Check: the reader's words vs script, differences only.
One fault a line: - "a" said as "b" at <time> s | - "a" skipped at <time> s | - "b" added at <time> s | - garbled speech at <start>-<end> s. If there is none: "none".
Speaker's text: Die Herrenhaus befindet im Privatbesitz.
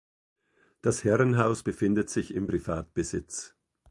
- "Die" said as "Das" at 0.8 s
- "sich" added at 2.1 s